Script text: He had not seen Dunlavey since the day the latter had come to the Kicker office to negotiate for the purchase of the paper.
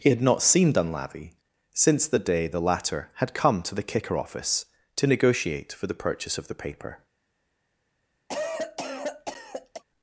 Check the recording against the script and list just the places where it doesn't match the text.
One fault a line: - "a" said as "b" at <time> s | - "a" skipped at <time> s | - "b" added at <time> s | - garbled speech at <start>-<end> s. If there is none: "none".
none